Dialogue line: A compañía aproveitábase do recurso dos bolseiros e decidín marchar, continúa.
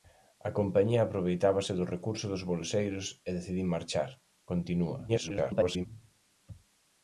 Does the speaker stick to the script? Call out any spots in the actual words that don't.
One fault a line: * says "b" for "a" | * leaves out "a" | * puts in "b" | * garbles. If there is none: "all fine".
* garbles